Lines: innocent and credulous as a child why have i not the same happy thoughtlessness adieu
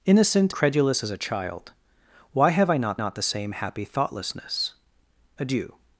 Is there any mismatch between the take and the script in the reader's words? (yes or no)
yes